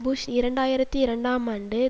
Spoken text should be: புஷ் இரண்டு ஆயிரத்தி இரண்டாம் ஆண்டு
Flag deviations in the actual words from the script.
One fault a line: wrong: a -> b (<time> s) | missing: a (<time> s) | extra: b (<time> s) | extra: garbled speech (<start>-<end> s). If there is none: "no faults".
no faults